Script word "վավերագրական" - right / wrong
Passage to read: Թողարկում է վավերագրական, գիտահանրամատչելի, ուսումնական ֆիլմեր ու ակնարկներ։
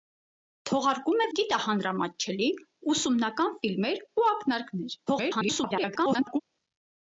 wrong